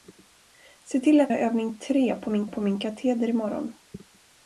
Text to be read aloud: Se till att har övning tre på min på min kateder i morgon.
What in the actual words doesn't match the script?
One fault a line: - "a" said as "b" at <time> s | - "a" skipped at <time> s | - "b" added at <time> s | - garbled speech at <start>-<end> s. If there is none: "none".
none